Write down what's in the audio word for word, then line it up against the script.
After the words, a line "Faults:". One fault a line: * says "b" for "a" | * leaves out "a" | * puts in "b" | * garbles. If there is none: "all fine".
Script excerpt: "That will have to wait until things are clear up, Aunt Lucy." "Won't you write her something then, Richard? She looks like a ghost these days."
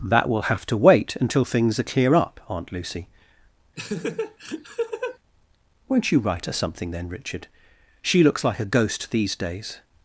"That will have to wait until things are clear up, Aunt Lucy." "Won't you write her something then, Richard? She looks like a ghost these days."
Faults:
all fine